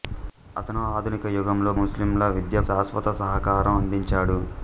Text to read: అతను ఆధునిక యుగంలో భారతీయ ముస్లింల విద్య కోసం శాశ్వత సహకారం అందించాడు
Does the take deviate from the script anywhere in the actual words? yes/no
yes